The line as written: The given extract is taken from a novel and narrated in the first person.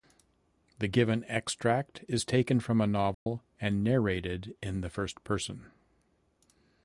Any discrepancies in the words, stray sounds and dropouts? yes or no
yes